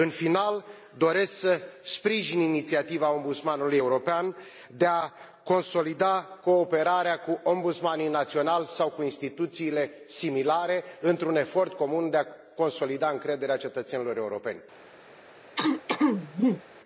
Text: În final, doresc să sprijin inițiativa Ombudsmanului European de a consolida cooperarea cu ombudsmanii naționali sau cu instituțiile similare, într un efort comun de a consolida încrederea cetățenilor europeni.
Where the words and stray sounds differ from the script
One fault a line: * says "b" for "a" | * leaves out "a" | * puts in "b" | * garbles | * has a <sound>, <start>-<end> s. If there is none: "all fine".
* has a throat clearing, 15.6-16.6 s